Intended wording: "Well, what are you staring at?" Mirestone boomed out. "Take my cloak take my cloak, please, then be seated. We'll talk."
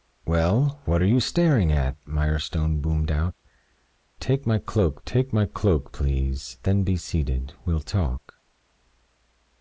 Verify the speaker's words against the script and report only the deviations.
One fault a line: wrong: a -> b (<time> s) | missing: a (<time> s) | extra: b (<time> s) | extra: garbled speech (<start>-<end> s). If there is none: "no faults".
no faults